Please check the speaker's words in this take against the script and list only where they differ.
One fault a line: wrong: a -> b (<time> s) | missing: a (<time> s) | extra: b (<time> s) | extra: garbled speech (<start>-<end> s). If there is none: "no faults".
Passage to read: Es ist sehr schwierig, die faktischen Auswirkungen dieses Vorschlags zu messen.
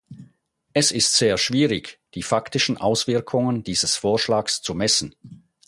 no faults